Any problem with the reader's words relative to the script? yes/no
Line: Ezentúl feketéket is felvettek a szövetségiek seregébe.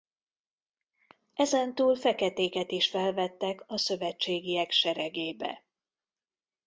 no